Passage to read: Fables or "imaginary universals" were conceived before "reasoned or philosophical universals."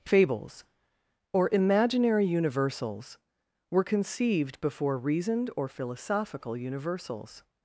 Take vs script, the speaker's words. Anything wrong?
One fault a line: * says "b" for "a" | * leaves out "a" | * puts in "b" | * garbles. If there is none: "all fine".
all fine